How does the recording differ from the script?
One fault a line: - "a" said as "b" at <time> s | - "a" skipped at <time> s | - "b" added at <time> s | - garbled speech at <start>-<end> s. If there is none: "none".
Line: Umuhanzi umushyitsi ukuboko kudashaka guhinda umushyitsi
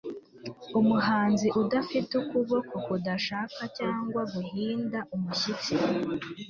- "umushyitsi" said as "udafite" at 1.6 s
- "cyangwa" added at 3.8 s